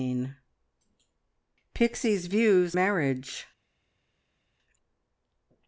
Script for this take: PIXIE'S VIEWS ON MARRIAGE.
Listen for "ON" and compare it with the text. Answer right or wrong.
wrong